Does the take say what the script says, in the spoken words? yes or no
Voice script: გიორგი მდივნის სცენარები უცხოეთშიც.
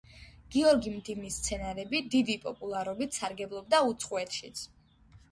no